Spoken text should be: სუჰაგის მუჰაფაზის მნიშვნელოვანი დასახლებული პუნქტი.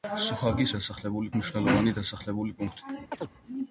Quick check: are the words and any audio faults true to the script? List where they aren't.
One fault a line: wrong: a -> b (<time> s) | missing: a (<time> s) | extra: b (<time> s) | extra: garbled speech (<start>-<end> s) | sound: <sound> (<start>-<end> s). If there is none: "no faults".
wrong: მუჰაფაზის -> დასახლებული (0.8 s)
sound: chirp (3.1-3.3 s)